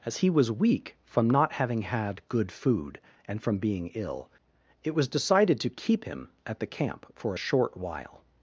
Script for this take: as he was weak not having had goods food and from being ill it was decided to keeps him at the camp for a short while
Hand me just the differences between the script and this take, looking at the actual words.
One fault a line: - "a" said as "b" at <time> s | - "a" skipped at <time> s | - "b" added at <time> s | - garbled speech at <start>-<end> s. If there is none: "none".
- "from" added at 1.0 s
- "goods" said as "good" at 2.3 s
- "keeps" said as "keep" at 5.7 s